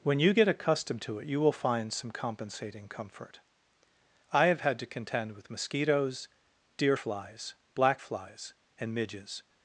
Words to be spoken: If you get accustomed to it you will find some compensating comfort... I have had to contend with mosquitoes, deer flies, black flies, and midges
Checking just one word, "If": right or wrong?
wrong